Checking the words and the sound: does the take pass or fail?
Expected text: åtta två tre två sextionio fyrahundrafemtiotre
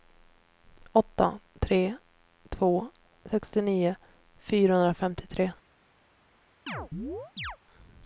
fail